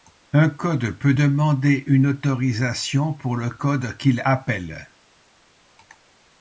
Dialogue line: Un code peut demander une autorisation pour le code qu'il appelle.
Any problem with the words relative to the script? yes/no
no